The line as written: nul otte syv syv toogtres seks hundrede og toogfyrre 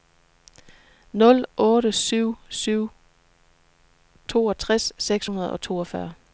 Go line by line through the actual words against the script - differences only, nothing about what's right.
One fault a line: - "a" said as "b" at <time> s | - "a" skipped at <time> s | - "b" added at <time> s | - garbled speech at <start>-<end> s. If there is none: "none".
none